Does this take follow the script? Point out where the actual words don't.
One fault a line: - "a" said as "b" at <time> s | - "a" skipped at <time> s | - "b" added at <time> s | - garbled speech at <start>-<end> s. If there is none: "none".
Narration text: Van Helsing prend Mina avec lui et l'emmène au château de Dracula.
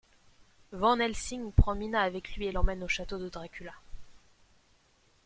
none